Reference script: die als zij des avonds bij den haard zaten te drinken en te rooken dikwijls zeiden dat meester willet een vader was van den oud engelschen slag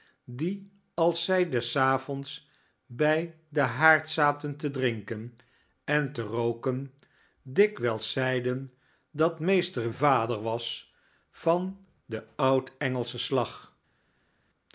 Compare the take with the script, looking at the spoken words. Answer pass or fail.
fail